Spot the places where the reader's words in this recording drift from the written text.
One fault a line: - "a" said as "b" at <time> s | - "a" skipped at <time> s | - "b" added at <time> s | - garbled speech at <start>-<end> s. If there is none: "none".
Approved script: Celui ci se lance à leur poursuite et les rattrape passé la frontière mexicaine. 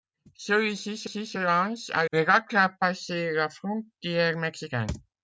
- "ci se" added at 1.0 s
- "leur poursuite et" skipped at 2.1 s